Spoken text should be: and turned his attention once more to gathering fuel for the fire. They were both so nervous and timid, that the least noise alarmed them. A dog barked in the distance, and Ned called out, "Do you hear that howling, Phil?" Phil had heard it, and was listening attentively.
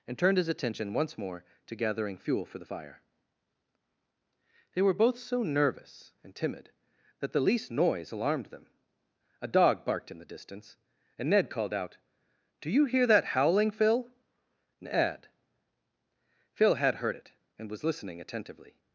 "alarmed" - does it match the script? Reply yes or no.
yes